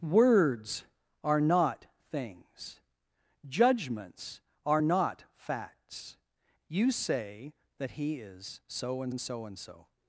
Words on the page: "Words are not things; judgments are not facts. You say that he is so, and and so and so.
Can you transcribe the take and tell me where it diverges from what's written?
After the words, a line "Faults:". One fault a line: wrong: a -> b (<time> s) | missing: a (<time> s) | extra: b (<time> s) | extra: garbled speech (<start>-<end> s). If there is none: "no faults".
"Words are not things; judgments are not facts. You say that he is so, and and so and so.
Faults:
no faults